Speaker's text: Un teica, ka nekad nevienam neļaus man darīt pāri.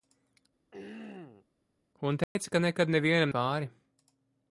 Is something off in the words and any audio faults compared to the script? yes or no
yes